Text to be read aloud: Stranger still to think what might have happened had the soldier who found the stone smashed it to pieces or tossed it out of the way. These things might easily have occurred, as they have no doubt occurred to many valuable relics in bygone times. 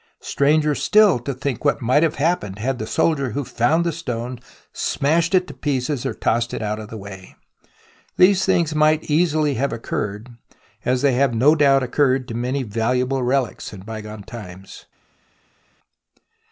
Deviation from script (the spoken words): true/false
false